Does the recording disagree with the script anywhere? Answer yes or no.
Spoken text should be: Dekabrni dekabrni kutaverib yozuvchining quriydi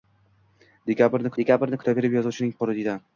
no